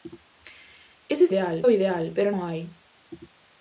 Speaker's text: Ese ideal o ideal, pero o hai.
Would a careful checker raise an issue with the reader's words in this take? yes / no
no